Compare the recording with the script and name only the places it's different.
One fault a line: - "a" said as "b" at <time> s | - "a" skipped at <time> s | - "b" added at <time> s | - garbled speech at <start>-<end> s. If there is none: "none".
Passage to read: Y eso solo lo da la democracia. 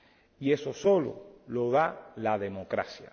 none